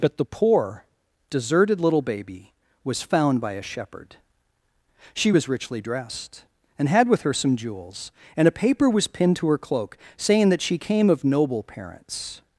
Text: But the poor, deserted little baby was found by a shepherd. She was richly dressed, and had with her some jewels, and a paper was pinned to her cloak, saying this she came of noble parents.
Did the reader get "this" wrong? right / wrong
wrong